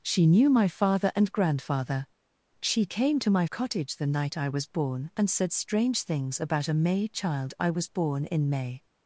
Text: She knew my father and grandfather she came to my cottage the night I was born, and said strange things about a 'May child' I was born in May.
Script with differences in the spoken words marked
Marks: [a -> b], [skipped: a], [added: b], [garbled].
She knew my father and grandfather she came to my cottage the night I was born, and said strange things about a 'May child' I was born in May.